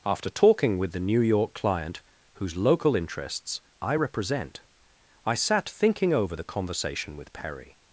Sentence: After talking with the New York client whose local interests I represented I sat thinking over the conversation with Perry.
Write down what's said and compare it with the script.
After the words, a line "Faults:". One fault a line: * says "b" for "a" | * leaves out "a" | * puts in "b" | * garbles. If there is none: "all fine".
After talking with the New York client whose local interests I represent I sat thinking over the conversation with Perry.
Faults:
* says "represent" for "represented"